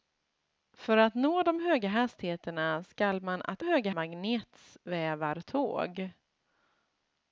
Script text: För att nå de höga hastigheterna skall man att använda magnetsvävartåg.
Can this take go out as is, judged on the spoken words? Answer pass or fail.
fail